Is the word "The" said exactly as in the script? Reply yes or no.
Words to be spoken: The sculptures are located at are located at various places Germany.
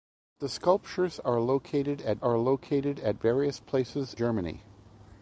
yes